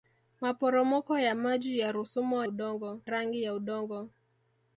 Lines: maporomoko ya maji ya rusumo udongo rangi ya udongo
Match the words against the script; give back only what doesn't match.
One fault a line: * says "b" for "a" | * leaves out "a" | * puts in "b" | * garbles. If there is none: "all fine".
all fine